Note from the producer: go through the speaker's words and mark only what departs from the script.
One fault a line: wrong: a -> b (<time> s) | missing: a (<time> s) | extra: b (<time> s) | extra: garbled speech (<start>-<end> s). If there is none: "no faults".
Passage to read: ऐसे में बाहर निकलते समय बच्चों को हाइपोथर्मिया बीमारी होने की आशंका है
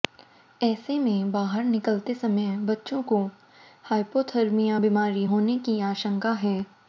no faults